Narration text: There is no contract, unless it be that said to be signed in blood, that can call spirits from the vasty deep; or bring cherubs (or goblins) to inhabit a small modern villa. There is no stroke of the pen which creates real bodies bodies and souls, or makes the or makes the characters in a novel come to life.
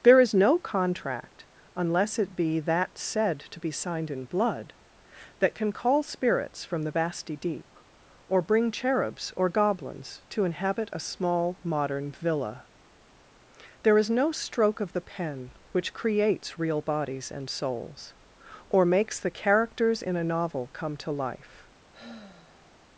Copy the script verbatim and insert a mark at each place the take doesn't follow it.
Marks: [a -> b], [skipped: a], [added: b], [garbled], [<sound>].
There is no contract, unless it be that said to be signed in blood, that can call spirits from the vasty deep; or bring cherubs (or goblins) to inhabit a small modern villa. There is no stroke of the pen which creates real bodies [skipped: bodies] and souls, or makes the [skipped: or makes the] characters in a novel come to life. [sigh]